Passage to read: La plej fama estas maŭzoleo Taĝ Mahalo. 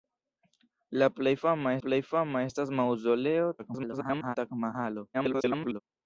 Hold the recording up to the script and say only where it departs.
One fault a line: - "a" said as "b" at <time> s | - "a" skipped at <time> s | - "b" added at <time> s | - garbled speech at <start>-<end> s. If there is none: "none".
- "plej fama" added at 1.8 s
- garbled speech at 3.6-4.4 s
- garbled speech at 5.1-5.8 s